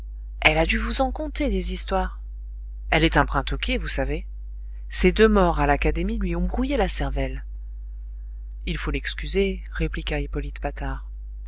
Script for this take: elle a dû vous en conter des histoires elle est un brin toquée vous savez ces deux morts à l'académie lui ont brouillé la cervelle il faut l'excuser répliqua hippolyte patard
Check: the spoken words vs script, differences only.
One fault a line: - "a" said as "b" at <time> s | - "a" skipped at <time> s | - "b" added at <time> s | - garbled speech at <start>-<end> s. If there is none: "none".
none